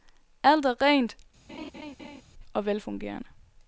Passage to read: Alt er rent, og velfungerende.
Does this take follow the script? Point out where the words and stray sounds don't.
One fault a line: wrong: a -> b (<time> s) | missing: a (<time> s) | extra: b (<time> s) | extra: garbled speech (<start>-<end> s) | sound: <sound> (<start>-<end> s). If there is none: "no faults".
sound: laugh (1.5-2.2 s)